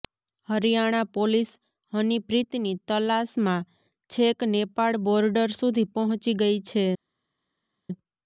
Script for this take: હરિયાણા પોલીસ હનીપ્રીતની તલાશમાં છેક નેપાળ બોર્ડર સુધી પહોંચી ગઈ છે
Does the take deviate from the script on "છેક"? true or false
false